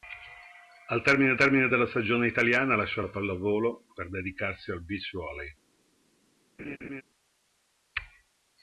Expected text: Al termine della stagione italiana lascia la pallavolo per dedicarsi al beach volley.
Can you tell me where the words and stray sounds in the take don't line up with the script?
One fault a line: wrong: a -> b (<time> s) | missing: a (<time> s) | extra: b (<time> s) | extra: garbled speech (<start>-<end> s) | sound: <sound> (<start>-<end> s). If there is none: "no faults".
extra: termine (1.4 s)
sound: laugh (6.6-7.0 s)